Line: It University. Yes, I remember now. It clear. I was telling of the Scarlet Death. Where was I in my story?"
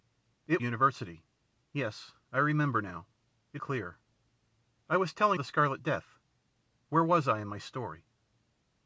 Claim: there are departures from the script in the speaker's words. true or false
false